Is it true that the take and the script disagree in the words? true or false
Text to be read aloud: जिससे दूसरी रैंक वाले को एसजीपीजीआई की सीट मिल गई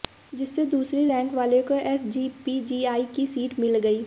false